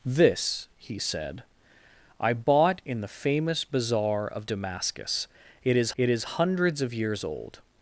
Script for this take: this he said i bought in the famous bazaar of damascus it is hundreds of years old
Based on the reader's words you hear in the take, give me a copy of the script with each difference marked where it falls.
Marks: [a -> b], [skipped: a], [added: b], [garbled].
this he said i bought in the famous bazaar of damascus it is [added: it is] hundreds of years old